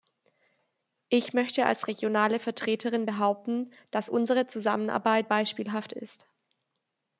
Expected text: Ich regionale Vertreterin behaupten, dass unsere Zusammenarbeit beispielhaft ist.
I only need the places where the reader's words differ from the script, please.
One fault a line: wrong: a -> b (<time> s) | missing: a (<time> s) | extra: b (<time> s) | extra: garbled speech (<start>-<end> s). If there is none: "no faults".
extra: möchte als (1.3 s)